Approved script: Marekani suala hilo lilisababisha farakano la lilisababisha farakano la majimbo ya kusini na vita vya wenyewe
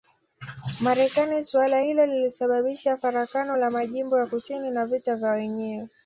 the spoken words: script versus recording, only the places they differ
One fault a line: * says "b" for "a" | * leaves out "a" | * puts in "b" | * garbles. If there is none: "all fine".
* leaves out "lilisababisha farakano la"